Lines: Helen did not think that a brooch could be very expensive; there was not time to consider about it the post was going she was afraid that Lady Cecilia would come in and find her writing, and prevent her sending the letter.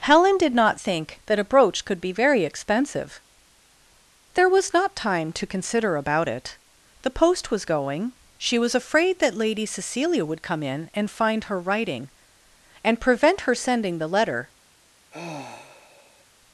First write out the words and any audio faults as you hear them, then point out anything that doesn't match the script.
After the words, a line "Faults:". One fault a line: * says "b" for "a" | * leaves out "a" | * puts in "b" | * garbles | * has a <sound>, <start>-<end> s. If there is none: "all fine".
Helen did not think that a brooch could be very expensive; there was not time to consider about it the post was going she was afraid that Lady Cecilia would come in and find her writing, and prevent her sending the letter.
Faults:
* has a sigh, 15.1-16.3 s